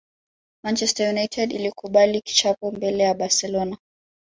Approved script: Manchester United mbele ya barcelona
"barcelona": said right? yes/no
yes